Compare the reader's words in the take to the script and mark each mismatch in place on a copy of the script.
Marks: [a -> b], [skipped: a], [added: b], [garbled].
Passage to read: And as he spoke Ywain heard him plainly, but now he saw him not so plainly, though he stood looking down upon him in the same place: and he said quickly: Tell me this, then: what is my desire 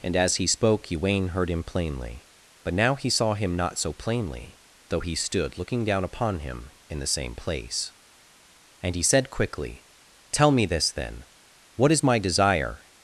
And as he spoke Ywain heard him plainly, but now he saw him not so plainly, though he stood looking down upon him in the same place: and he said quickly: Tell me this, then: what is my desire